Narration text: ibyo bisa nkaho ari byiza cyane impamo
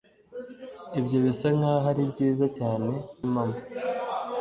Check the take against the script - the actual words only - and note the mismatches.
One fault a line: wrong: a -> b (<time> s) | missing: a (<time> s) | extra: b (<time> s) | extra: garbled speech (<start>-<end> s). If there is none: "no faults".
no faults